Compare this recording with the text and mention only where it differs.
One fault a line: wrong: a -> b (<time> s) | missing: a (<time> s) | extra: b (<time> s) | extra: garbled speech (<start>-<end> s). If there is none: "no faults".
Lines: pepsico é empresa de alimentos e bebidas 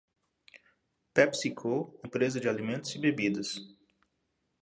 no faults